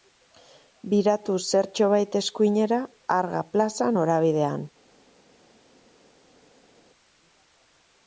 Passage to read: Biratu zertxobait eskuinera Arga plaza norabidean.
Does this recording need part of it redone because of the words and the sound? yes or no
no